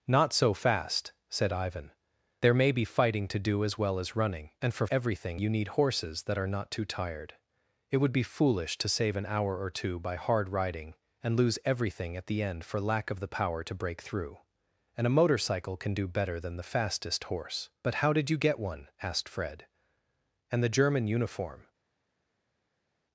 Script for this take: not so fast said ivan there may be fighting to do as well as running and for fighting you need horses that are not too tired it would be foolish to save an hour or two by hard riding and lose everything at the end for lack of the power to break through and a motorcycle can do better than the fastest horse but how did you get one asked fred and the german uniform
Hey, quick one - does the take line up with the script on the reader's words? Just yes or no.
no